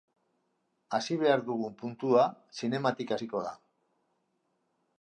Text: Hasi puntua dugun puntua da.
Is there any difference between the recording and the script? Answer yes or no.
yes